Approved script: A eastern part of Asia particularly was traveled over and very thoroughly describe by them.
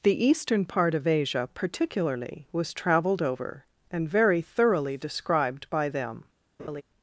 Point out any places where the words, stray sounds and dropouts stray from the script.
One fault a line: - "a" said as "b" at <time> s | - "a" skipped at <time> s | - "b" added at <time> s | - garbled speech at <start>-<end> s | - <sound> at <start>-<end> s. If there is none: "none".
- "A" said as "The" at 0.0 s
- "describe" said as "described" at 5.0 s
- laugh at 6.6-6.8 s